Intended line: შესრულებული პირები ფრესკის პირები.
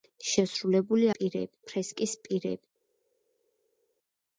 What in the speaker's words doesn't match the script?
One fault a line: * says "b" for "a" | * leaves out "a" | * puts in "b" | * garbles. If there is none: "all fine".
all fine